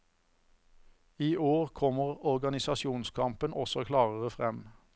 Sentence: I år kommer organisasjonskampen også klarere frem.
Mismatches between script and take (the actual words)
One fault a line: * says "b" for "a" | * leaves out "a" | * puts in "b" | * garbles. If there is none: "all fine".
all fine